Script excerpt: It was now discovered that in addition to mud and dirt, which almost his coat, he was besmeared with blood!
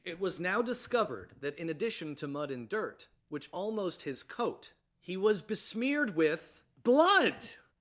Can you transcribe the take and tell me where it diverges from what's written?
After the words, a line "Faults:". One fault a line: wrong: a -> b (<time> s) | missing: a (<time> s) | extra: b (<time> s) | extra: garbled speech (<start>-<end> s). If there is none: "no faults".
It was now discovered that in addition to mud and dirt, which almost his coat, he was besmeared with blood!
Faults:
no faults